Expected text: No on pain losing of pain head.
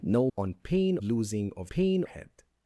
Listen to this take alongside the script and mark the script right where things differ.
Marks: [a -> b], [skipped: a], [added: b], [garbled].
No on pain losing of pain head.